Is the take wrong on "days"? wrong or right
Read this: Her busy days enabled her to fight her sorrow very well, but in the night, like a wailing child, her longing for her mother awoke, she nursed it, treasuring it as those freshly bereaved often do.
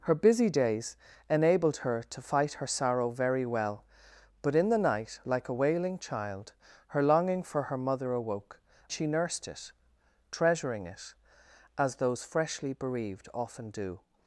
right